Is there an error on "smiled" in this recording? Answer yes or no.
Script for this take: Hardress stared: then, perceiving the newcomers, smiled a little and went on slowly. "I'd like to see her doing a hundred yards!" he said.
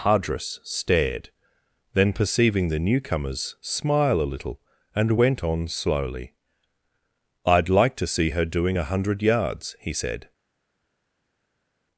yes